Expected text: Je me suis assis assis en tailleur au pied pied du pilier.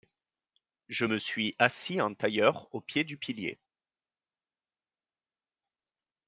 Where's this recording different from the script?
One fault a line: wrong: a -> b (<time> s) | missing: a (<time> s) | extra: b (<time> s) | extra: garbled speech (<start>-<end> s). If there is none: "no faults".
missing: assis (2.0 s)
missing: pied (3.0 s)